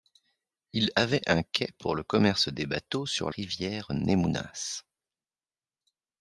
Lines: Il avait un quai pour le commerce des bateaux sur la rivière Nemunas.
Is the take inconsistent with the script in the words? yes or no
yes